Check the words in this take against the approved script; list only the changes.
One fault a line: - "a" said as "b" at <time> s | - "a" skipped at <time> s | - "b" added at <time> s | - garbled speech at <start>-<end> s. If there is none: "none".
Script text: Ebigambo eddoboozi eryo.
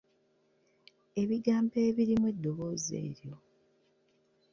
- "ebirimu" added at 1.9 s